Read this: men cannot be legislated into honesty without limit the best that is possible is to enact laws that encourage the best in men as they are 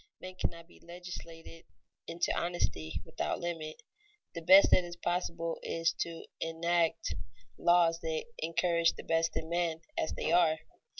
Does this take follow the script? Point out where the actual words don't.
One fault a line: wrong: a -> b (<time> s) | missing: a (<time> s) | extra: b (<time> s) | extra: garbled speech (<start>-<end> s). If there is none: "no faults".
no faults